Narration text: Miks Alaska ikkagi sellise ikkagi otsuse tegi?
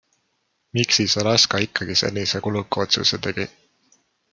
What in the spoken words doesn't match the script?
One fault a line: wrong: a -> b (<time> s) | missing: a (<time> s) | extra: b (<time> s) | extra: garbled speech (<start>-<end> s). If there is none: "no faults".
extra: siis (1.0 s)
wrong: ikkagi -> kuluka (2.4 s)